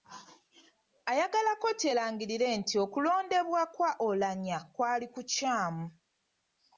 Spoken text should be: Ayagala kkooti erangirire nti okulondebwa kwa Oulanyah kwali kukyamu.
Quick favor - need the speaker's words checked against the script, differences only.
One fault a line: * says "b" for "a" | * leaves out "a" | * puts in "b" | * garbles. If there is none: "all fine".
all fine